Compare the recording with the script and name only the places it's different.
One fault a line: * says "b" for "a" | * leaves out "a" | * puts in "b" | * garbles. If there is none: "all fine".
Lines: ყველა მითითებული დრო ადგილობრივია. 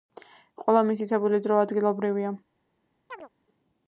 all fine